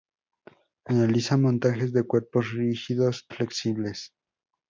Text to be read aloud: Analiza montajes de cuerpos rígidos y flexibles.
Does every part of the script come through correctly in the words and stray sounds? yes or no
no